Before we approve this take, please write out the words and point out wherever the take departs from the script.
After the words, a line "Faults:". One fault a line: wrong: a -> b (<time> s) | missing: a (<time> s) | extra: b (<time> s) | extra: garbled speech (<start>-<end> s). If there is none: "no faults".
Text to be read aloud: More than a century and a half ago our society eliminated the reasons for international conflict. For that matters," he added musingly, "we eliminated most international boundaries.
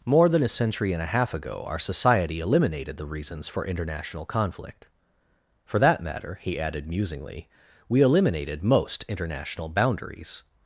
More than a century and a half ago our society eliminated the reasons for international conflict. For that matter," he added musingly, "we eliminated most international boundaries.
Faults:
wrong: matters -> matter (6.0 s)